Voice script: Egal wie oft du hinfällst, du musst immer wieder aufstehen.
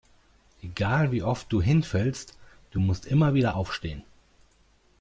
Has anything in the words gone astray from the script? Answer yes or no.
no